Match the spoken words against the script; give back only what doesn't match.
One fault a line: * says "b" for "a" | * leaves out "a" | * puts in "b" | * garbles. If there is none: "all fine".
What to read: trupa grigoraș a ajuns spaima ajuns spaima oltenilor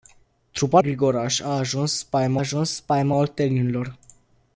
all fine